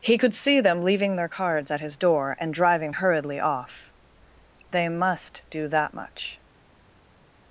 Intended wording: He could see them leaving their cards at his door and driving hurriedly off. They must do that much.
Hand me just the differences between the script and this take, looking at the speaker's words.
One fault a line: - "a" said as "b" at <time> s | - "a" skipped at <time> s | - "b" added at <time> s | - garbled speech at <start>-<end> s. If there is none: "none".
none